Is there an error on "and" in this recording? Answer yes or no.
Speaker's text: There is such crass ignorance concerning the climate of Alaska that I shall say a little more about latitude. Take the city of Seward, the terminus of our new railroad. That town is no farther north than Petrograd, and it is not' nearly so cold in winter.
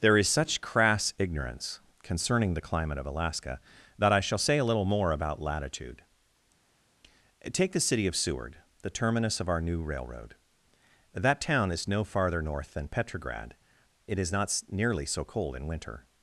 yes